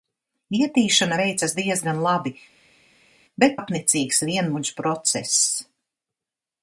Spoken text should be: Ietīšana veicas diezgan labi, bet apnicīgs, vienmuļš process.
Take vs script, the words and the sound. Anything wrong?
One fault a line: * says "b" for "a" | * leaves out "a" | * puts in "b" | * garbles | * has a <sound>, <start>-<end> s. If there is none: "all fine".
all fine